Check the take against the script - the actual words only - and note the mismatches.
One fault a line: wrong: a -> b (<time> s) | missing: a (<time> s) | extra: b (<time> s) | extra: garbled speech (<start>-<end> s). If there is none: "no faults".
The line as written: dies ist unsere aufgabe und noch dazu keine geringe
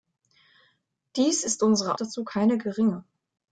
missing: aufgabe und noch (2.0 s)